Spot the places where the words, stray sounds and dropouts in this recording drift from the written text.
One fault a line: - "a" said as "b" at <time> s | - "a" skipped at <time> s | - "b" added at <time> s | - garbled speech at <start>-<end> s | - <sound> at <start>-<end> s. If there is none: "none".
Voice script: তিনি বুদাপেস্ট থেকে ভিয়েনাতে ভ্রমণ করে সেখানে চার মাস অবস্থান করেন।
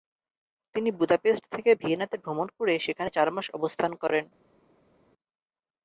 none